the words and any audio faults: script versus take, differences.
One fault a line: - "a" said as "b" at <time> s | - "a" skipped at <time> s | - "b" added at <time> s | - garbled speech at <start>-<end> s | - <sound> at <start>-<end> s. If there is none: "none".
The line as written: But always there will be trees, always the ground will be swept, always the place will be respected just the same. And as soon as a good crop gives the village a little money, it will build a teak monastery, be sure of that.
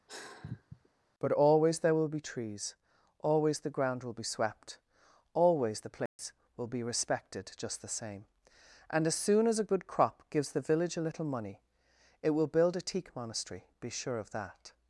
- sigh at 0.1-0.9 s
- dropout at 6.1-6.2 s